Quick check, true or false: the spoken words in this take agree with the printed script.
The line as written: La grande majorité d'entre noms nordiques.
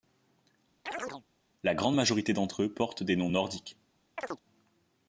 false